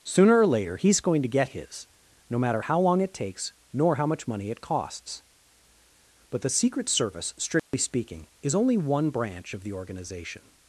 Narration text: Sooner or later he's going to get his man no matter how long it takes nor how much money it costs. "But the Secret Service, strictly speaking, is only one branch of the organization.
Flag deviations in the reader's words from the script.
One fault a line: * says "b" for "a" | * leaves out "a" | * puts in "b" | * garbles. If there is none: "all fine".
* leaves out "man"